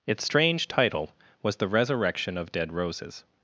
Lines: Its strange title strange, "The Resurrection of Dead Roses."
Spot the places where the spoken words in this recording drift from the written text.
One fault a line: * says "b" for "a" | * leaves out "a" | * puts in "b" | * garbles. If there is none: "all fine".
* says "was" for "strange"